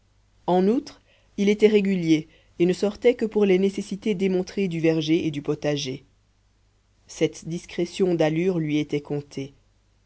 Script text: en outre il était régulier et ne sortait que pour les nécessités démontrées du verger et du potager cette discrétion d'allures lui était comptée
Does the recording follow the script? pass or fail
pass